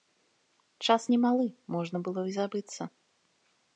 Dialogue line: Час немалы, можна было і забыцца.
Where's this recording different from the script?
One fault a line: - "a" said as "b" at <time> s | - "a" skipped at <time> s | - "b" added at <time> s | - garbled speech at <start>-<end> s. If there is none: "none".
none